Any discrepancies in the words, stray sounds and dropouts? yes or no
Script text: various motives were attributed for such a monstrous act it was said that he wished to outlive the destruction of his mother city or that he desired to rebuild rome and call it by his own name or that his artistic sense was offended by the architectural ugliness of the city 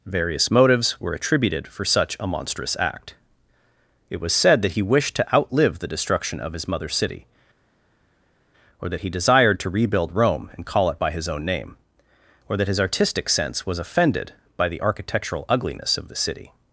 no